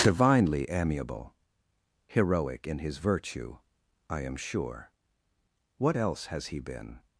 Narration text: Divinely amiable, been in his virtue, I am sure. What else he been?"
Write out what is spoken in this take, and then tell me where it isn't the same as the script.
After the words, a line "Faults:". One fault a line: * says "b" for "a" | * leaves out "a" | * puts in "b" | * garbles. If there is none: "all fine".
Divinely amiable, heroic in his virtue, I am sure. What else has he been?"
Faults:
* says "heroic" for "been"
* puts in "has"